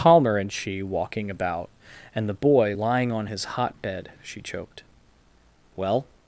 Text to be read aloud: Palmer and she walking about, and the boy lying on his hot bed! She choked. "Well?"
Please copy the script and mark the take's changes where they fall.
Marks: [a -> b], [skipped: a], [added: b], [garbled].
Palmer and she walking about, and the boy lying on his hot bed! She choked. "Well?"